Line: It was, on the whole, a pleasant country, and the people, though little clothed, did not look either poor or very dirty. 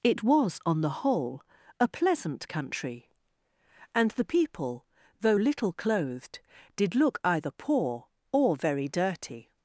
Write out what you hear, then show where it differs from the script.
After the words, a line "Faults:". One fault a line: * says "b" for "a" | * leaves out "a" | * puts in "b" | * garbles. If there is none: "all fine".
It was, on the whole, a pleasant country, and the people, though little clothed, did look either poor or very dirty.
Faults:
* leaves out "not"